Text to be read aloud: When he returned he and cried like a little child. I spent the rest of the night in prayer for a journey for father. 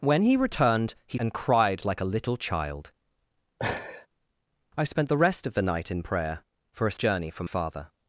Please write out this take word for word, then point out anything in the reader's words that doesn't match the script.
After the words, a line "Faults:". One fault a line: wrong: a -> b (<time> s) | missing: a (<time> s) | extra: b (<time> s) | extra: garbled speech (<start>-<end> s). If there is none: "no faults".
When he returned he and cried like a little child. I spent the rest of the night in prayer for a journey for father.
Faults:
no faults